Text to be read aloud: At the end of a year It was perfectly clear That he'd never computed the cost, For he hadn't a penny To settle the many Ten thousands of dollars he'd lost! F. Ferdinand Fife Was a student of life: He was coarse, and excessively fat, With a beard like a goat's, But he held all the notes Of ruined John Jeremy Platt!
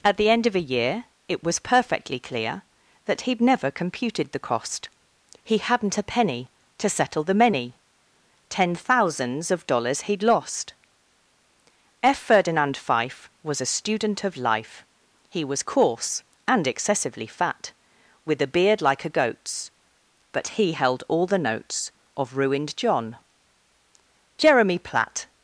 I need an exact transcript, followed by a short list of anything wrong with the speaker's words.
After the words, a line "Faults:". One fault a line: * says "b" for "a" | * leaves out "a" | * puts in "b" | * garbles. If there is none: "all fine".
At the end of a year It was perfectly clear That he'd never computed the cost, he hadn't a penny To settle the many Ten thousands of dollars he'd lost! F. Ferdinand Fife Was a student of life: He was coarse, and excessively fat, With a beard like a goat's, But he held all the notes Of ruined John Jeremy Platt!
Faults:
* leaves out "For"